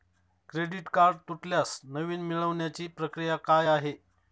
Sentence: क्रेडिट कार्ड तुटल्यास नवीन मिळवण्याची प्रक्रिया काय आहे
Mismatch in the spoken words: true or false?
false